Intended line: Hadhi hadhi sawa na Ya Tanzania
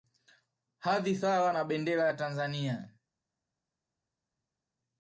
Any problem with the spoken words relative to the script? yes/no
yes